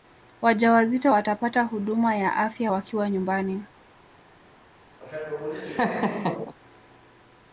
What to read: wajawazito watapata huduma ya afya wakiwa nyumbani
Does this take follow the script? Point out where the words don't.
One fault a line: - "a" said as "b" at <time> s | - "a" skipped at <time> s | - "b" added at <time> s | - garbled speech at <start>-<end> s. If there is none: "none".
none